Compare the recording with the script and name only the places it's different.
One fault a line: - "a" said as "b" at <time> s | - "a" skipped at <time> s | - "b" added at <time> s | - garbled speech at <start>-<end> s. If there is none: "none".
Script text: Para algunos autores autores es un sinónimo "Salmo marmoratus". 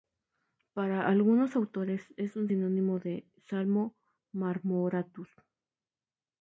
- "autores" skipped at 2.1 s
- "de" added at 3.0 s